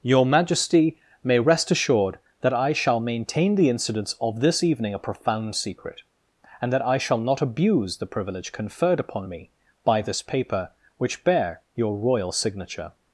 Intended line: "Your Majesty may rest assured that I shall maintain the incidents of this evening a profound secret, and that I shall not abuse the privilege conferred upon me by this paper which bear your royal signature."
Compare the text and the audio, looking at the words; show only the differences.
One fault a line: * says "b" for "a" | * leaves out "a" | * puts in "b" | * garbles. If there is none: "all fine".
all fine